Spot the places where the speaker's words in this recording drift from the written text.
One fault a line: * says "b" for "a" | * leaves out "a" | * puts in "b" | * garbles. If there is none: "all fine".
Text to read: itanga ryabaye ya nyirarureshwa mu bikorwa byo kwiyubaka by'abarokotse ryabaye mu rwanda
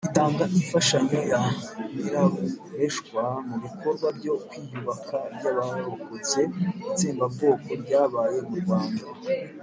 * says "imfashanyo" for "ryabaye"
* puts in "itsembabwoko"